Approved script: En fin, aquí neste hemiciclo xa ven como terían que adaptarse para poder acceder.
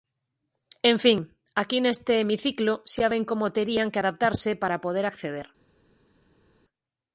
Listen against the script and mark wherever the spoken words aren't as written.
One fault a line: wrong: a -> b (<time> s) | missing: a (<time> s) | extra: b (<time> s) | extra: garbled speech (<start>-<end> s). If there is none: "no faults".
no faults